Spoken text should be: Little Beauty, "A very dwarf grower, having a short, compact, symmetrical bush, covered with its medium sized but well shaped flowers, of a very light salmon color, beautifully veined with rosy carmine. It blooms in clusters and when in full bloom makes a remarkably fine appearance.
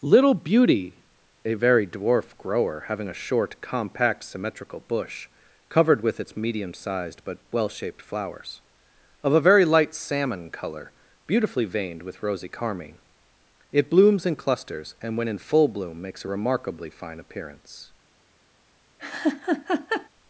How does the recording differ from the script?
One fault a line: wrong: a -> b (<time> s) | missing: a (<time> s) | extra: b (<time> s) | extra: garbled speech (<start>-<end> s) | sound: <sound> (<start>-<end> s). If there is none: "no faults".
sound: laugh (19.0-20.1 s)